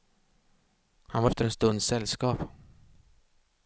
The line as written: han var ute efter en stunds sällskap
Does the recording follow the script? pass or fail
fail